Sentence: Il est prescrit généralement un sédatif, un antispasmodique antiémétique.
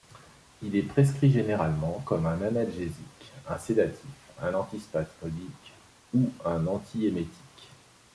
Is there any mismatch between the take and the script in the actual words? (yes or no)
yes